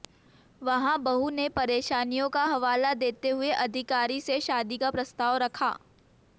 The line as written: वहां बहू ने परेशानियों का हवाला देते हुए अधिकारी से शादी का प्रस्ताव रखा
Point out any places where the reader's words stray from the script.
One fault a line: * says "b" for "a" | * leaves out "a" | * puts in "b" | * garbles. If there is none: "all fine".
all fine